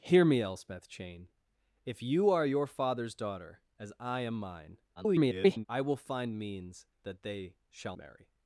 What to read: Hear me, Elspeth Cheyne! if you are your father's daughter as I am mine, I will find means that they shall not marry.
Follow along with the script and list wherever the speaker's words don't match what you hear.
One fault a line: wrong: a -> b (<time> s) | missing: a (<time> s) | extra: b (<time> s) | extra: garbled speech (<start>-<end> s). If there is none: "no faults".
extra: garbled speech (5.0-5.7 s)
missing: not (8.0 s)